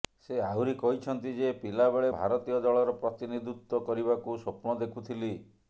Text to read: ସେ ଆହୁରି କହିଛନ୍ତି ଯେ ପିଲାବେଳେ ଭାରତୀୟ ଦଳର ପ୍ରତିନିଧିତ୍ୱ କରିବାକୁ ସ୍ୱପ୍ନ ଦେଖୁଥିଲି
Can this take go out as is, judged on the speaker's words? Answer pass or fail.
pass